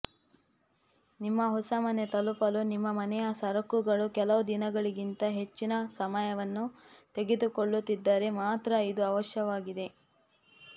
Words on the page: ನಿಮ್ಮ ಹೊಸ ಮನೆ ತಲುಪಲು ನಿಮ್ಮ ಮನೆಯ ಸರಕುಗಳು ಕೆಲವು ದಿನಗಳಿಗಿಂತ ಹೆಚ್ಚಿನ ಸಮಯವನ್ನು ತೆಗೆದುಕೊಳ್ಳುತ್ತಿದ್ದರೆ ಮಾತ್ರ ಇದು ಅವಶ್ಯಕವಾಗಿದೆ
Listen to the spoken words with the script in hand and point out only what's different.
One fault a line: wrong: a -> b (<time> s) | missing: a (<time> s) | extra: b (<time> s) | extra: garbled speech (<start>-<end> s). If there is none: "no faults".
no faults